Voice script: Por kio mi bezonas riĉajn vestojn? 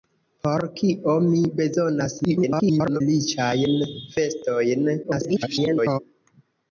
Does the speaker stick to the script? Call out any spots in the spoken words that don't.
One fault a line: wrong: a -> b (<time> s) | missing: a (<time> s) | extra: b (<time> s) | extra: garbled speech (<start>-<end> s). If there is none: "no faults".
extra: garbled speech (2.2-3.0 s)
extra: garbled speech (5.0-6.0 s)